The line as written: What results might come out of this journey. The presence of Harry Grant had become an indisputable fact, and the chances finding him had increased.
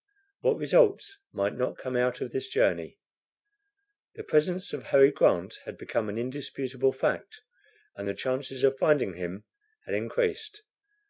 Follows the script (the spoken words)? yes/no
no